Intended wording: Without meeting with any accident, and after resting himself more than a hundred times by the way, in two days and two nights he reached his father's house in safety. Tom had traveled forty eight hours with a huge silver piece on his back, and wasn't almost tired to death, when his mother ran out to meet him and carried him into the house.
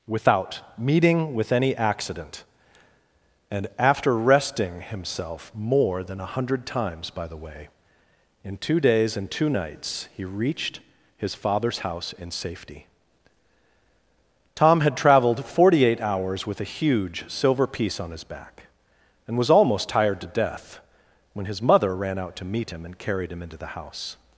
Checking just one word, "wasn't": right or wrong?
wrong